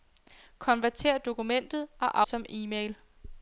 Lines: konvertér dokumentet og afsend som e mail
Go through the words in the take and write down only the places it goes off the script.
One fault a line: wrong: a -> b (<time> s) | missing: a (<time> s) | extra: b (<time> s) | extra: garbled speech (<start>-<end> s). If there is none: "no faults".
missing: afsend (2.2 s)